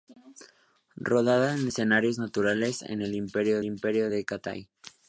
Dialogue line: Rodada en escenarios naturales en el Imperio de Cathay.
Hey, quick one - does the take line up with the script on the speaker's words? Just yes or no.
no